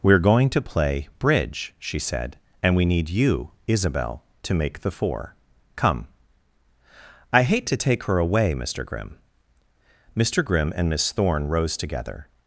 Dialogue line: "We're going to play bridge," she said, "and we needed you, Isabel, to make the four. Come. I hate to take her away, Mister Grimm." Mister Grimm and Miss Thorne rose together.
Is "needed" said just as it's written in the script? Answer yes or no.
no